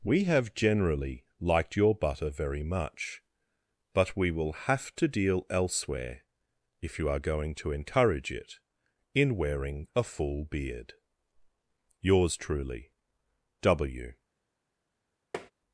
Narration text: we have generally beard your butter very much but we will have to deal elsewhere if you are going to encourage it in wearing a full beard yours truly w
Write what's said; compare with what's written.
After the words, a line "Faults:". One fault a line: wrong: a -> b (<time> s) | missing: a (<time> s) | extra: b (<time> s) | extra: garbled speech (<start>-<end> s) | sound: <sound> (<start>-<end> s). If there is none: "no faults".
we have generally liked your butter very much but we will have to deal elsewhere if you are going to encourage it in wearing a full beard yours truly w
Faults:
wrong: beard -> liked (1.4 s)
sound: tap (15.3-15.5 s)